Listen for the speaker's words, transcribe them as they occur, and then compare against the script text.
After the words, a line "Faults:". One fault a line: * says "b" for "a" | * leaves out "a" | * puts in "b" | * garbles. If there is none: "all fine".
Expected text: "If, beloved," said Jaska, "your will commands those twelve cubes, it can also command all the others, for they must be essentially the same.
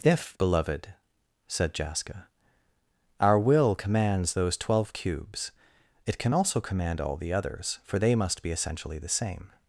"If, beloved," said Jaska, "our will commands those twelve cubes, it can also command all the others, for they must be essentially the same.
Faults:
* says "our" for "your"